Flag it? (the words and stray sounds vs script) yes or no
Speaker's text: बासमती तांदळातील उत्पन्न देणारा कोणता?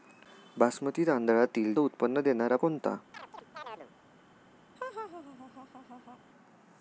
yes